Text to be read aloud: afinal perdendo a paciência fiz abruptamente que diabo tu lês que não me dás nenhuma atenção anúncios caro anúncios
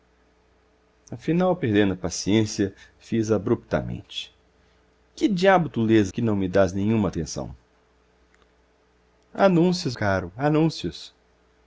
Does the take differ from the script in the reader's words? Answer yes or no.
no